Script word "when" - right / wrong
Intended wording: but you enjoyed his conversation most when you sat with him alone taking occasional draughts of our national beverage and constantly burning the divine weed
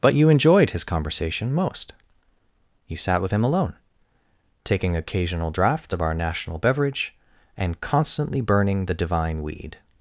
wrong